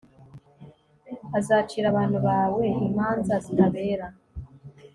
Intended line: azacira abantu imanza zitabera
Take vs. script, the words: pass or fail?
fail